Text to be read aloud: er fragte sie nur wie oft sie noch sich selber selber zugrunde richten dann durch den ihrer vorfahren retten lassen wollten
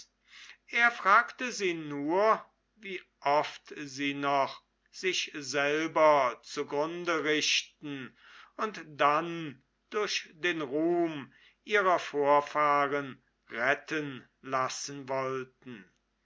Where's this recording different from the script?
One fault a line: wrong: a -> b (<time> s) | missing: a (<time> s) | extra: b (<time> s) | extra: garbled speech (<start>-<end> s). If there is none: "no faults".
missing: selber (6.4 s)
extra: und (8.6 s)
extra: ruhm (10.6 s)